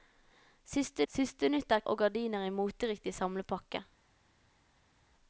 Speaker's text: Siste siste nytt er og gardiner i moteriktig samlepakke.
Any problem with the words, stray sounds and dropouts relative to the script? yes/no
no